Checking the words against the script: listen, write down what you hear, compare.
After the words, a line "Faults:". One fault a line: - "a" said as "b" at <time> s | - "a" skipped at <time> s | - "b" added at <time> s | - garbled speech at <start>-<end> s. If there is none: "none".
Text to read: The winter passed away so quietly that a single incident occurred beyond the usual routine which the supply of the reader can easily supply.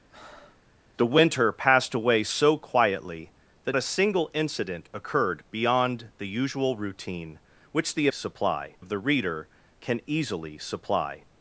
The winter passed away so quietly that a single incident occurred beyond the usual routine which the supply of the reader can easily supply.
Faults:
none